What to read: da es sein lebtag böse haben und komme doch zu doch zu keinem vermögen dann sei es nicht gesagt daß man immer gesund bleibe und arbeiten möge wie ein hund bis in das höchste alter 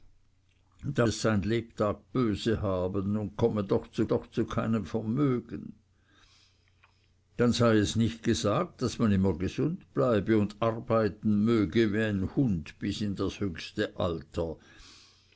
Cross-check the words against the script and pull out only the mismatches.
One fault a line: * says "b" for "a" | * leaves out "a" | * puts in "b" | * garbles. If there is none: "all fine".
all fine